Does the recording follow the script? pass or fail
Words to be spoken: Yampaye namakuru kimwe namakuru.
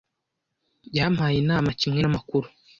fail